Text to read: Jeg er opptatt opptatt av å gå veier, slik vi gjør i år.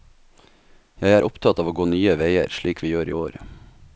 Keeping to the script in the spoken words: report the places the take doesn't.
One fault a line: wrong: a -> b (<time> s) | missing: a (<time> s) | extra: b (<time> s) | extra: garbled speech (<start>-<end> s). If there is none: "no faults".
missing: opptatt (1.6 s)
extra: nye (1.9 s)